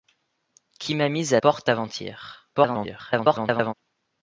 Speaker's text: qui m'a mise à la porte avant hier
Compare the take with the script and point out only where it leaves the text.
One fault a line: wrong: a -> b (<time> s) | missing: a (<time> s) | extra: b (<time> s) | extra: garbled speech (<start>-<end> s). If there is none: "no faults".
missing: la (1.4 s)
extra: garbled speech (2.5-3.7 s)